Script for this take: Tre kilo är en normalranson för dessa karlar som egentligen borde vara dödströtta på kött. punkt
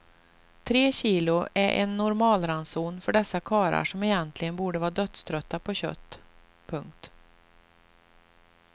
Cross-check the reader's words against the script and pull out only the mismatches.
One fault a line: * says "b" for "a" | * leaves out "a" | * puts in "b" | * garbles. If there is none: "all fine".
all fine